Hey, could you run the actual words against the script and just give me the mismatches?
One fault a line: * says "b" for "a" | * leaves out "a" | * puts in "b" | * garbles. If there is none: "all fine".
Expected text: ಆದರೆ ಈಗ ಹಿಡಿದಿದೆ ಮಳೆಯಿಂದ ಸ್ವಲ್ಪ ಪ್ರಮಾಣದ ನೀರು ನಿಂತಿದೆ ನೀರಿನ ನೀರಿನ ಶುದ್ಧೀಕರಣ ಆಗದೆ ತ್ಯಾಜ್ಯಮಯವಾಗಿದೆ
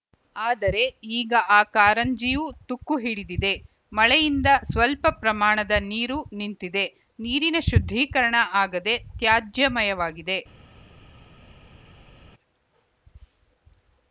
* puts in "ಆ ಕಾರಂಜಿಯೂ ತುಕ್ಕು"
* leaves out "ನೀರಿನ"